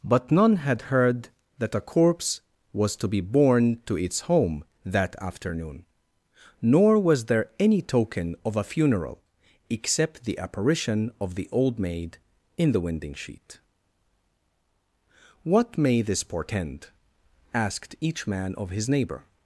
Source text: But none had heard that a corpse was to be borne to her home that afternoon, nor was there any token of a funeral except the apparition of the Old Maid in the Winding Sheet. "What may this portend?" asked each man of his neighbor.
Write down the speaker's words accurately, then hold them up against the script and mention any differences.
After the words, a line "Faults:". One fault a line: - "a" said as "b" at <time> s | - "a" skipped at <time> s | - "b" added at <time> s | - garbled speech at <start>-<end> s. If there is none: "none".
But none had heard that a corpse was to be borne to its home that afternoon, nor was there any token of a funeral except the apparition of the Old Maid in the Winding Sheet. "What may this portend?" asked each man of his neighbor.
Faults:
- "her" said as "its" at 4.0 s